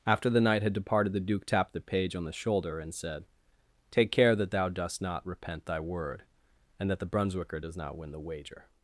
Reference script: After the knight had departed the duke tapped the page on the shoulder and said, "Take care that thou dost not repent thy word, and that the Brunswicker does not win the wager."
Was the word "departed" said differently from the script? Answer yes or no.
no